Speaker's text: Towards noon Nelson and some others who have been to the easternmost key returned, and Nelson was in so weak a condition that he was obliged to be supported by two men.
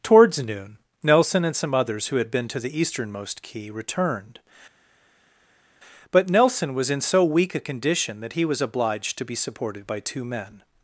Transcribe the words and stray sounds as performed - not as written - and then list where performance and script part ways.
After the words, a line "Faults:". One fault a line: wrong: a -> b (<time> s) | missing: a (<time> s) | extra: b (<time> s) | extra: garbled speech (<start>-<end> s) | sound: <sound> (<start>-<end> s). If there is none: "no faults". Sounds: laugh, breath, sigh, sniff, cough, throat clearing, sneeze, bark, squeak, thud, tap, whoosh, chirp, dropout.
Towards noon Nelson and some others who had been to the easternmost key returned, but Nelson was in so weak a condition that he was obliged to be supported by two men.
Faults:
wrong: have -> had (2.1 s)
wrong: and -> but (6.1 s)